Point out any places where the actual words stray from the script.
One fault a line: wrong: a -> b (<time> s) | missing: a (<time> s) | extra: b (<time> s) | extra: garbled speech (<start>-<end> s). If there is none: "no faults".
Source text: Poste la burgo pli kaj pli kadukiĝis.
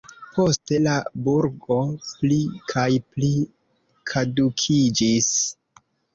no faults